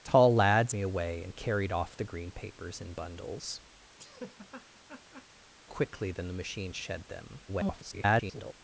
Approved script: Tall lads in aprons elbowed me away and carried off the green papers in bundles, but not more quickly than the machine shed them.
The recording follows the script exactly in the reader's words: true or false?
false